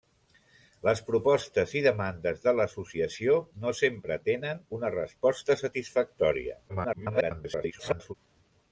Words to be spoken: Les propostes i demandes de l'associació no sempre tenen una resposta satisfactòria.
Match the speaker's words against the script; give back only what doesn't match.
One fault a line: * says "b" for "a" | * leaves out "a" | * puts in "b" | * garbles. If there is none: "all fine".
* garbles